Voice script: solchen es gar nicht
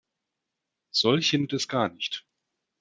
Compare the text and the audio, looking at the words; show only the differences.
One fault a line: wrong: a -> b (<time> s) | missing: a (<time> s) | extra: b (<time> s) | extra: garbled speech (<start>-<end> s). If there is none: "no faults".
no faults